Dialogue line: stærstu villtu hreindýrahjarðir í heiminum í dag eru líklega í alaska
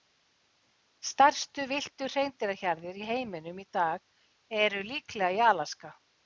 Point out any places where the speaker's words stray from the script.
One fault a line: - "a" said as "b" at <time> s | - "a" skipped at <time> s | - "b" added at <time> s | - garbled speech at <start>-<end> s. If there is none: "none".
none